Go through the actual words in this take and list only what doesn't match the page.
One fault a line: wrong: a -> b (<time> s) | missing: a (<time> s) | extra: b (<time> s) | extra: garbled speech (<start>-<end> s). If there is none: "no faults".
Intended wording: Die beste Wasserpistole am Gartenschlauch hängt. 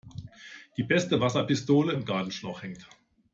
no faults